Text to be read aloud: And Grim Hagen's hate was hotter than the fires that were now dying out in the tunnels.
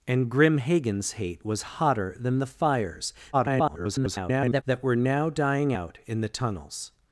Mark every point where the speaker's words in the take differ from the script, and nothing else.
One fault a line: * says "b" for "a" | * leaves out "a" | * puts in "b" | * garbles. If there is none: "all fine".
* garbles